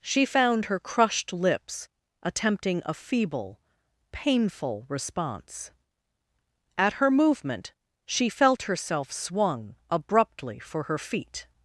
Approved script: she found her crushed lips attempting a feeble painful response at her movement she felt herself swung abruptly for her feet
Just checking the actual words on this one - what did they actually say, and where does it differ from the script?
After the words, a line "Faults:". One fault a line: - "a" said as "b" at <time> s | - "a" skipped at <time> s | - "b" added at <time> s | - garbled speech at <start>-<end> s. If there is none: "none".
she found her crushed lips attempting a feeble painful response at her movement she felt herself swung abruptly for her feet
Faults:
none